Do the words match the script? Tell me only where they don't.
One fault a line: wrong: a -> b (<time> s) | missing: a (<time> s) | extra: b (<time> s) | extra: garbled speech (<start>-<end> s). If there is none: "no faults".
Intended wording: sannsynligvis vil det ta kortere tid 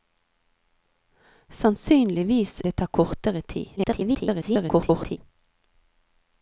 missing: vil (2.6 s)
extra: garbled speech (3.8-5.2 s)